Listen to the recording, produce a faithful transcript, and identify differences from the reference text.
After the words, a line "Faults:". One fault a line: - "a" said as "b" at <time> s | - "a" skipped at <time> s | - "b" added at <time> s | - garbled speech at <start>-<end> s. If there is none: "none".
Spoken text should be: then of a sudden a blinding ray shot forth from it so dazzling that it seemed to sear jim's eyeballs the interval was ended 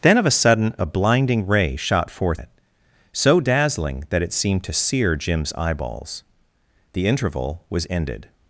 then of a sudden a blinding ray shot forth it so dazzling that it seemed to sear jim's eyeballs the interval was ended
Faults:
- "from" skipped at 2.4 s